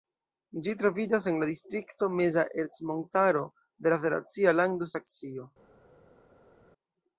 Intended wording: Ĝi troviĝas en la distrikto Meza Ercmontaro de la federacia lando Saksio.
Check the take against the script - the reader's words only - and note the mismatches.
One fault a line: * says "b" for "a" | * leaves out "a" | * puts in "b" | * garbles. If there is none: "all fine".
all fine